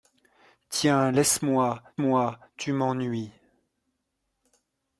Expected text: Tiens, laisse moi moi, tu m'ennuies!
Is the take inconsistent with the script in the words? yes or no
no